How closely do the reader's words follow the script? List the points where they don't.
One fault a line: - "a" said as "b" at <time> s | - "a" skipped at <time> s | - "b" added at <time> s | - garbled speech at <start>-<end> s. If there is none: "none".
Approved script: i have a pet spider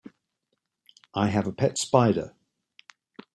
none